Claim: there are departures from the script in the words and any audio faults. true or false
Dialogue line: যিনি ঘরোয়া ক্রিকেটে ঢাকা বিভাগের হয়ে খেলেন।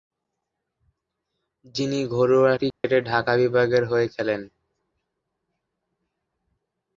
true